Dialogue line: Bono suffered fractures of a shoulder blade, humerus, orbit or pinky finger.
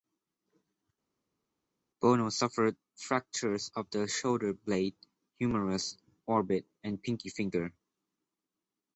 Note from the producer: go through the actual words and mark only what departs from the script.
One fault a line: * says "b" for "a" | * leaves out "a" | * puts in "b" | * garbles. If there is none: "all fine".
* says "the" for "a"
* says "and" for "or"